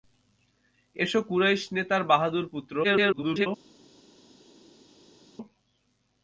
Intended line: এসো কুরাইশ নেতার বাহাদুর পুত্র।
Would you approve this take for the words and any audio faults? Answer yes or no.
no